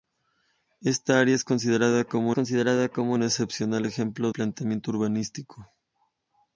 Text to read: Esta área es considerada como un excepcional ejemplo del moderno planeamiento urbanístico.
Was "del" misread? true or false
true